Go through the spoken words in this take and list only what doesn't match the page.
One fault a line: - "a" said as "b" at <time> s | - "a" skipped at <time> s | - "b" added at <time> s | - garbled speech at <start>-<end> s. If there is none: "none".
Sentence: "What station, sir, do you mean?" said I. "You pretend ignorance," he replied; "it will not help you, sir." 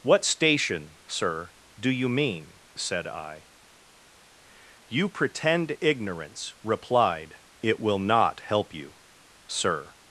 - "he" skipped at 6.5 s